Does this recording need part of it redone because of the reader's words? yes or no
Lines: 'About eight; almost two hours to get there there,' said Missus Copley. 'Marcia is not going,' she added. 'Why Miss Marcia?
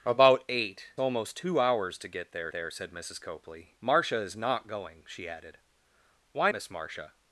no